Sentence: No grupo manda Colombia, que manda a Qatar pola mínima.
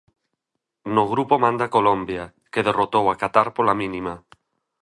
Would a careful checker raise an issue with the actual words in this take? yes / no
yes